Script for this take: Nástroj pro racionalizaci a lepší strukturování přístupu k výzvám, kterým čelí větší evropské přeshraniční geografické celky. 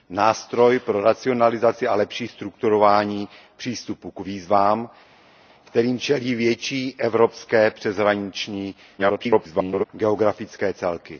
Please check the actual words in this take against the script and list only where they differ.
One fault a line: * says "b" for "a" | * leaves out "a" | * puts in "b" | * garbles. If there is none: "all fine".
* garbles